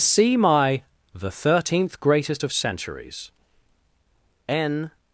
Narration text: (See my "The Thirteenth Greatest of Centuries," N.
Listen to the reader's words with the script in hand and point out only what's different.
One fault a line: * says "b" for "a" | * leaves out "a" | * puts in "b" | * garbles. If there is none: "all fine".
all fine